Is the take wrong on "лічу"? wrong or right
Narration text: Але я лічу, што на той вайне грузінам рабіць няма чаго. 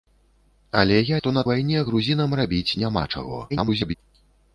wrong